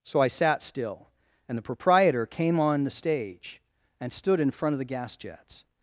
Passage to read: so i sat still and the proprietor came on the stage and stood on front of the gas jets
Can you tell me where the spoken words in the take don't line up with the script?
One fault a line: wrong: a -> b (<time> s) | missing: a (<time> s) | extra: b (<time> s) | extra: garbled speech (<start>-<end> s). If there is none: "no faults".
wrong: on -> in (4.4 s)